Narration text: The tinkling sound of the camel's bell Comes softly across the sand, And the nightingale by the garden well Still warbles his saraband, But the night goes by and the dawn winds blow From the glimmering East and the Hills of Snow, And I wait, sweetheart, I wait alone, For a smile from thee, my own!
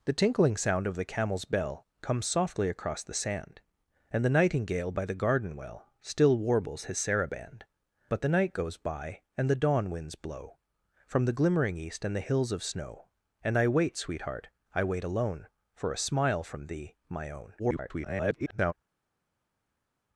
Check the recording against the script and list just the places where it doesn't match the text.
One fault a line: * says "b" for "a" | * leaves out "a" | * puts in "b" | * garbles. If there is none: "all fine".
* garbles